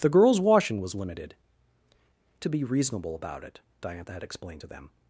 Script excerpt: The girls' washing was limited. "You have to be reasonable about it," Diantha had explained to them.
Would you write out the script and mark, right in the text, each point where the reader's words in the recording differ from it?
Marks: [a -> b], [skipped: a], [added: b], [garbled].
The girls' washing was limited. [skipped: "You have] to be reasonable about it," Diantha had explained to them.